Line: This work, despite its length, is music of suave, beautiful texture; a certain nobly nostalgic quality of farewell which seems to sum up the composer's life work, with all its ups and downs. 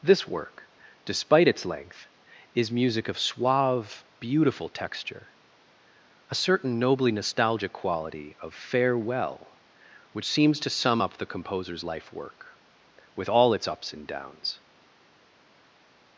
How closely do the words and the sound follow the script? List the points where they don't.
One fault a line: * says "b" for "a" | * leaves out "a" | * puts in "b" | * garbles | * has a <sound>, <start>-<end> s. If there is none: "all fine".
all fine